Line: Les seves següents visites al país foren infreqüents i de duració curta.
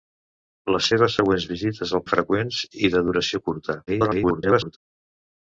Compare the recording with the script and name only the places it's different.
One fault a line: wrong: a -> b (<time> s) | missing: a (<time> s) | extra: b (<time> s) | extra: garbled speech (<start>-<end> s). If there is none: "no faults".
missing: país foren (2.0 s)
extra: garbled speech (3.9-4.8 s)